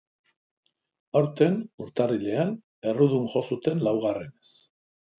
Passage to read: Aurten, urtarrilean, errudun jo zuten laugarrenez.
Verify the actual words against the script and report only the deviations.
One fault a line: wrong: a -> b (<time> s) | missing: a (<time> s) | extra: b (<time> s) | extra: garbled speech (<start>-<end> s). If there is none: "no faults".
no faults